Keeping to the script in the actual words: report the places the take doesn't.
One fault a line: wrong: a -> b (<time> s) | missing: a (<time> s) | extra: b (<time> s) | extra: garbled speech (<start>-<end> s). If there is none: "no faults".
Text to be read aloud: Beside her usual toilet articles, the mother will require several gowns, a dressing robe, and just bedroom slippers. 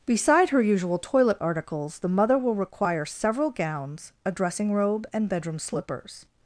missing: just (5.3 s)